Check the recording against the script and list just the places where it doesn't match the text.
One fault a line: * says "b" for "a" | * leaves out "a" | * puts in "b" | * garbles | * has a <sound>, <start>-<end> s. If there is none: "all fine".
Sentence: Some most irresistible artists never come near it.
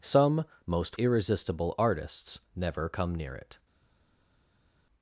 all fine